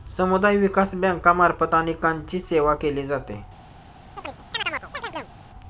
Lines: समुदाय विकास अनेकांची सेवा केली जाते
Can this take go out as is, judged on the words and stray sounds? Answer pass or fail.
fail